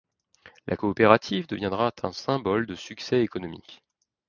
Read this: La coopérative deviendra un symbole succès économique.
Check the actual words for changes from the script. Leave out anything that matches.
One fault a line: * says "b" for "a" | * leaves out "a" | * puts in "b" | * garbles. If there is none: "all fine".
* puts in "de"